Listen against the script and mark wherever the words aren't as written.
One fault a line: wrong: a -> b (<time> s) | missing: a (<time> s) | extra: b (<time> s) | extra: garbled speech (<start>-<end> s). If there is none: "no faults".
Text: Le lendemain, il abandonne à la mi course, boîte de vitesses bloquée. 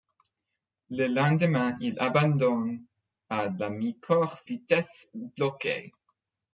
missing: boîte de (4.5 s)